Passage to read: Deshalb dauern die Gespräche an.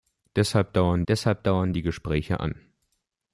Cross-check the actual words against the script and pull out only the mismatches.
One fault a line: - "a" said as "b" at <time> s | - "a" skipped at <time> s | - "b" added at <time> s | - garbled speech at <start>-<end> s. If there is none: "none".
- "deshalb dauern" added at 1.1 s